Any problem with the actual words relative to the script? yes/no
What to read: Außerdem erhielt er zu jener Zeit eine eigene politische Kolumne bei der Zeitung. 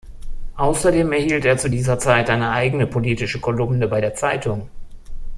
yes